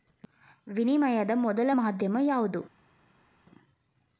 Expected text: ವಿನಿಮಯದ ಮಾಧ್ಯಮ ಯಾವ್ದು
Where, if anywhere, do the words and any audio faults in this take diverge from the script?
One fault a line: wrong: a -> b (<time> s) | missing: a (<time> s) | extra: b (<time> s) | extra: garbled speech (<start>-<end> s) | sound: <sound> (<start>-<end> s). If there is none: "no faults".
extra: ಮೊದಲ (1.4 s)